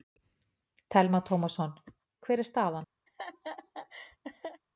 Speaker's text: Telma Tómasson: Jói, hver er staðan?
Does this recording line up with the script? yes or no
no